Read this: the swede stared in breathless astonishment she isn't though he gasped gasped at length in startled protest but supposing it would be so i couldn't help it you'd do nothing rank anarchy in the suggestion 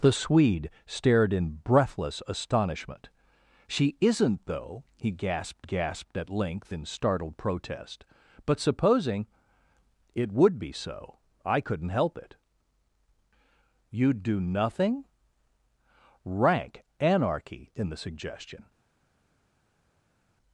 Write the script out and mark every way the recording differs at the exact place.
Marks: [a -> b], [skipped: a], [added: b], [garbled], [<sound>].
the swede stared in breathless astonishment she isn't though he gasped gasped at length in startled protest but supposing it would be so i couldn't help it you'd do nothing rank anarchy in the suggestion